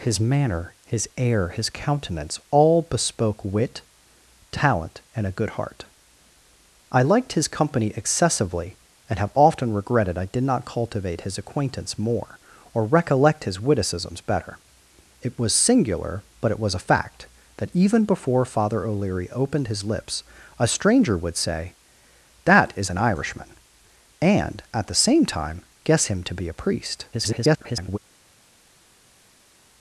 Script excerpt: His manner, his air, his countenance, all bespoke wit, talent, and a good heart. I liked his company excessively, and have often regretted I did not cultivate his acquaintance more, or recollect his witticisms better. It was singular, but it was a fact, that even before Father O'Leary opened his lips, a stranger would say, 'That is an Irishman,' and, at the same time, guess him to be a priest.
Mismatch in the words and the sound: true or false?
true